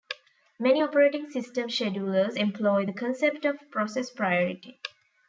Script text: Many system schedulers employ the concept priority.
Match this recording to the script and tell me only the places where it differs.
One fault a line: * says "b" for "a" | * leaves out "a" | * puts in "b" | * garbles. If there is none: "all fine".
* puts in "operating"
* puts in "of process"